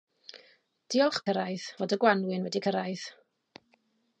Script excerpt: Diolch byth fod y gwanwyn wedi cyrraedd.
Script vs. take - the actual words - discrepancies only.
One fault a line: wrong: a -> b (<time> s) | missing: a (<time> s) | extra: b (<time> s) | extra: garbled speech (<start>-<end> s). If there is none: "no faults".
wrong: byth -> cyrraedd (1.3 s)